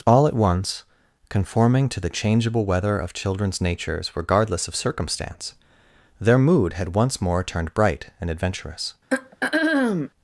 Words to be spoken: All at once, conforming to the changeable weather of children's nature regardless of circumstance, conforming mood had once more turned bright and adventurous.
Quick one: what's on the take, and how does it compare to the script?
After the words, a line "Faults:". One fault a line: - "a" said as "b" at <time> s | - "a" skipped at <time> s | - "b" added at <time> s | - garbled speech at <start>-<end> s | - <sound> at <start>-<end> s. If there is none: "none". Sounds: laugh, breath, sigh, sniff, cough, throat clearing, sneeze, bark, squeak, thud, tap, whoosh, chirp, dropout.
All at once, conforming to the changeable weather of children's natures regardless of circumstance, their mood had once more turned bright and adventurous.
Faults:
- "nature" said as "natures" at 3.6 s
- "conforming" said as "their" at 6.2 s
- throat clearing at 9.1-10.1 s